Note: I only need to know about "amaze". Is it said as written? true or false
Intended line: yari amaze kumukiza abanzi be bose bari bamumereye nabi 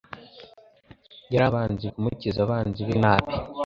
false